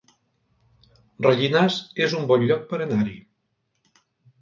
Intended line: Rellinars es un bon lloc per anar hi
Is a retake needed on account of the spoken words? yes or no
no